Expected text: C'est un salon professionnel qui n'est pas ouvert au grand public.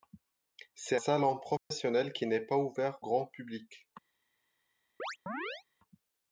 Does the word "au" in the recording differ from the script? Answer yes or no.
yes